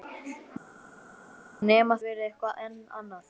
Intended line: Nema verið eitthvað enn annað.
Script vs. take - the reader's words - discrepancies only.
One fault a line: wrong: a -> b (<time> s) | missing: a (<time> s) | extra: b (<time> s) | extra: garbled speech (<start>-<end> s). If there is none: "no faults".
no faults